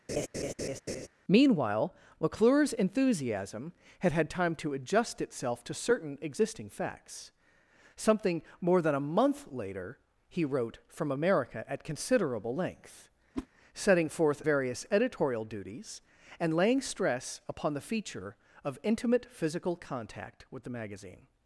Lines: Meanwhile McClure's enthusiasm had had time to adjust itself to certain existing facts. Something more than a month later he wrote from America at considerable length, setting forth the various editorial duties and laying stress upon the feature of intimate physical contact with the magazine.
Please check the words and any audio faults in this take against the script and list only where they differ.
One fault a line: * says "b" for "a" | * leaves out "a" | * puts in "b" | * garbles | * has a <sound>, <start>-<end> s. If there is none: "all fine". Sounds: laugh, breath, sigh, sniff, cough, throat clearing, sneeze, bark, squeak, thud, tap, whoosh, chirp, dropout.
* has a laugh, 0.1-1.1 s
* has a whoosh, 13.3-13.5 s
* leaves out "the"